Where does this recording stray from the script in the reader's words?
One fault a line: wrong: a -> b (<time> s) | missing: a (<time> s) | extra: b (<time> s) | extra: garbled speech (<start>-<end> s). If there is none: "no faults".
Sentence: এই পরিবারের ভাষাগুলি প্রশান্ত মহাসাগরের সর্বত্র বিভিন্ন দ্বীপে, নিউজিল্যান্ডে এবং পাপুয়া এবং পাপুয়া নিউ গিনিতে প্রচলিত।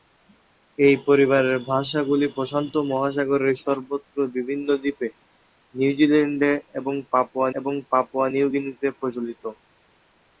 no faults